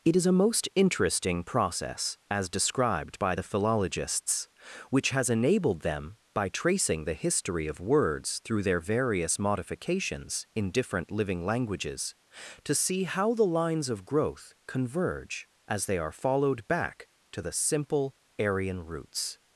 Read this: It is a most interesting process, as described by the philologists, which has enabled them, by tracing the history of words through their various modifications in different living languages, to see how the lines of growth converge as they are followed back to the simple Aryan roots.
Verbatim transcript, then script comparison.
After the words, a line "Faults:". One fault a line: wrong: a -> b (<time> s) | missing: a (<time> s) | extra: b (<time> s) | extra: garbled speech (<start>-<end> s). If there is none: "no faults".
It is a most interesting process, as described by the philologists, which has enabled them, by tracing the history of words through their various modifications in different living languages, to see how the lines of growth converge as they are followed back to the simple Aryan roots.
Faults:
no faults